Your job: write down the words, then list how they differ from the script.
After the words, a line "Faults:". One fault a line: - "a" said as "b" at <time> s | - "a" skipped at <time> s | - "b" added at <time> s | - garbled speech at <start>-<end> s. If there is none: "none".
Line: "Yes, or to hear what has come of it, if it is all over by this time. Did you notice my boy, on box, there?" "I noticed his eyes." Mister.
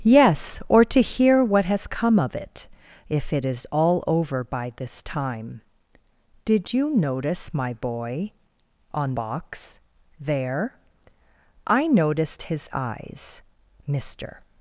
"Yes, or to hear what has come of it, if it is all over by this time. Did you notice my boy, on box, there?" "I noticed his eyes." Mister.
Faults:
none